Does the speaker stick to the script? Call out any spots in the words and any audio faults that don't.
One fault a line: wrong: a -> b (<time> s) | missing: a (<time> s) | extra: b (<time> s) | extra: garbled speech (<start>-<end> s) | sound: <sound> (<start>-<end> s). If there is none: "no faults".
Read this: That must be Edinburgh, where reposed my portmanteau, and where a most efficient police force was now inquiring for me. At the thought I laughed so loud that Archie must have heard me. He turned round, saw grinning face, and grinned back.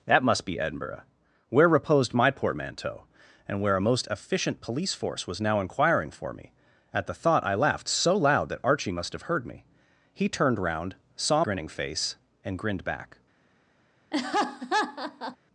sound: laugh (14.1-15.4 s)